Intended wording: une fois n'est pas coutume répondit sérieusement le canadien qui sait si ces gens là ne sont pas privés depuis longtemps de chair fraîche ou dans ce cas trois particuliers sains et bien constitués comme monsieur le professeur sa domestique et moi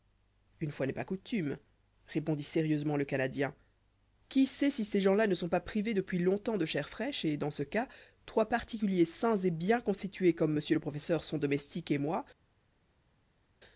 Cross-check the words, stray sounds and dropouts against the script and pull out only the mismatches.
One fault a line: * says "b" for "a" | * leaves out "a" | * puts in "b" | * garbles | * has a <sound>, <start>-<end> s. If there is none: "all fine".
* says "et" for "ou"
* says "son" for "sa"